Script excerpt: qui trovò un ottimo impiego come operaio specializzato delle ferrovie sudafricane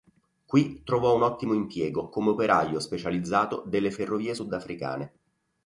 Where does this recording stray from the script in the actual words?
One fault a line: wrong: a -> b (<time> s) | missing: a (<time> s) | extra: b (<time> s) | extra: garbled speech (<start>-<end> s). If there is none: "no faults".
no faults